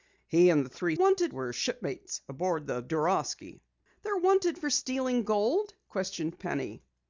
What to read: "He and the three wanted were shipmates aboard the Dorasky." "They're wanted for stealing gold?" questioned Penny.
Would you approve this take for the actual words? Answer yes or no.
yes